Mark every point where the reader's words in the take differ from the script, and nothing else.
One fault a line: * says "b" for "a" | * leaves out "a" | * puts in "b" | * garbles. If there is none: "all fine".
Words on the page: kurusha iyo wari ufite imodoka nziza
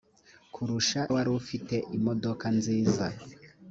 * leaves out "iyo"